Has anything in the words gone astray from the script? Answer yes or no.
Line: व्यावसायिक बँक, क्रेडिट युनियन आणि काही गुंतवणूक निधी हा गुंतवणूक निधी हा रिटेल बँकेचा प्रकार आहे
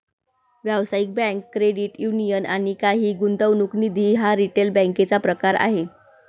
yes